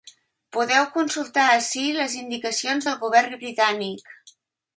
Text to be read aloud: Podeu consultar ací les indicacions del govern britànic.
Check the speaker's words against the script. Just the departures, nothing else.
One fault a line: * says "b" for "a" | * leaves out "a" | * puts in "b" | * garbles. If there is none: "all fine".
all fine